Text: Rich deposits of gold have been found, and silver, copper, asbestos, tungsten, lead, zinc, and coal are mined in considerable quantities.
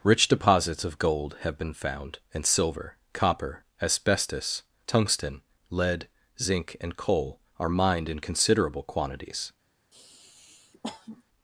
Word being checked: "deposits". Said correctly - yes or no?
yes